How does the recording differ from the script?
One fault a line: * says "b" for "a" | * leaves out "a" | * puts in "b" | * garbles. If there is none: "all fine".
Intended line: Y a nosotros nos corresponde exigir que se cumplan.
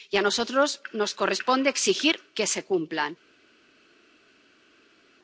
all fine